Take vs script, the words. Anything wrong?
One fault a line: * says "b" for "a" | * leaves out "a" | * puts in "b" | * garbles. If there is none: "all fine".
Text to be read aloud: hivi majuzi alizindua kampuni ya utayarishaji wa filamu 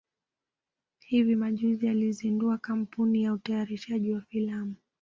all fine